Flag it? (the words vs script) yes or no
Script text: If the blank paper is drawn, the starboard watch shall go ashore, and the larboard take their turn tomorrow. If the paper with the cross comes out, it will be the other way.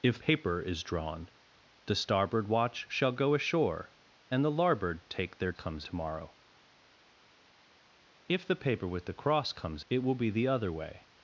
yes